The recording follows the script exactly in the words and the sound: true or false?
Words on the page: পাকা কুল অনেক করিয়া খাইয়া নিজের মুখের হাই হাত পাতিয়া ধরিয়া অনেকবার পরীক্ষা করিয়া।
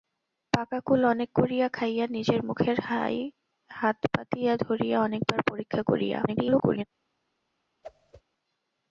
false